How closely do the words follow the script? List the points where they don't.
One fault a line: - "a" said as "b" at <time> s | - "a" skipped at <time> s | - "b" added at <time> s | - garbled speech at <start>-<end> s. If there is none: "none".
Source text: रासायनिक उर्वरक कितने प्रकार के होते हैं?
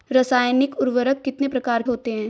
- "के" skipped at 1.8 s